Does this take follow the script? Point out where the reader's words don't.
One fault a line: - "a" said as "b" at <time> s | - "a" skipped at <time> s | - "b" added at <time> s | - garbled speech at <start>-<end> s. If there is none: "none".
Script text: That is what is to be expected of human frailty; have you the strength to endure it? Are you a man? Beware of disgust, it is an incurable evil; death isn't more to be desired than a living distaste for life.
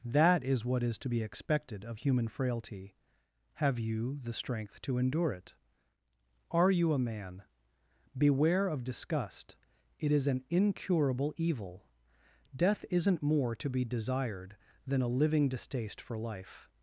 none